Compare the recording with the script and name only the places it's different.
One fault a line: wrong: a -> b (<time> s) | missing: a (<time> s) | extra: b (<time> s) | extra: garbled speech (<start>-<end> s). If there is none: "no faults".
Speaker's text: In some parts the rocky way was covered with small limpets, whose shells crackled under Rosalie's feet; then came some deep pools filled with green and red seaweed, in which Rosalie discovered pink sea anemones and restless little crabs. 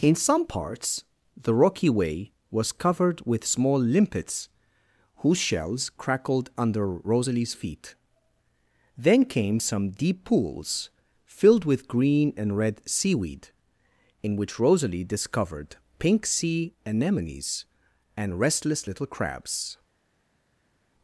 no faults